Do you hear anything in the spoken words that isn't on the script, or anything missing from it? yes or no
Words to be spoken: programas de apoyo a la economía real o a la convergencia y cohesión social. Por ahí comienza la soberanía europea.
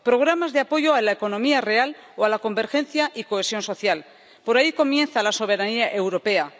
no